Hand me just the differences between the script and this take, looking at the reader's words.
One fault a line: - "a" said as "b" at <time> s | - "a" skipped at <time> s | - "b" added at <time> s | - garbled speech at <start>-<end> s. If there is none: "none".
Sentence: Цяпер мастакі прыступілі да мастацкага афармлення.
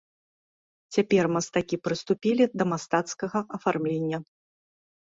none